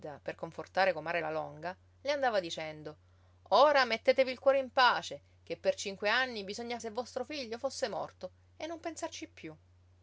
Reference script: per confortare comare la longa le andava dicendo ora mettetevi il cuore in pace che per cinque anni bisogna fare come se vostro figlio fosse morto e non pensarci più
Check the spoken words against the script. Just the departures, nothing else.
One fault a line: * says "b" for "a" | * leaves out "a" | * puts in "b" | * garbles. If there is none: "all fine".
* leaves out "fare come"